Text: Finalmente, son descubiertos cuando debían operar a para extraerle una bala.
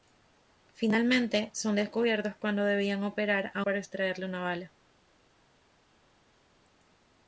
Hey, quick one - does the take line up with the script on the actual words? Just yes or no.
yes